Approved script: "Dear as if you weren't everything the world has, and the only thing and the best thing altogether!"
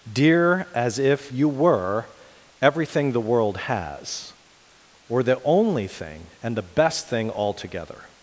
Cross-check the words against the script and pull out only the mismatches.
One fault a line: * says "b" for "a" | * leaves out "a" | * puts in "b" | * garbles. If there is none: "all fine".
* says "were" for "weren't"
* says "or" for "and"